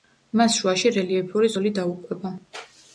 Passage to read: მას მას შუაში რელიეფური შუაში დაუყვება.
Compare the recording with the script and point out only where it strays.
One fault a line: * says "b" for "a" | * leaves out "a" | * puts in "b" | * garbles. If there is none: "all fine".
* leaves out "მას"
* says "ზოლი" for "შუაში"